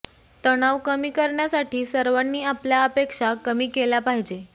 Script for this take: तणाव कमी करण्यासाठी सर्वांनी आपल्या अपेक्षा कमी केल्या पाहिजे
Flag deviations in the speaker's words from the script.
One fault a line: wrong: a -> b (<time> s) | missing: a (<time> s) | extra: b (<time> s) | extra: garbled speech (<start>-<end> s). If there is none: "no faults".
no faults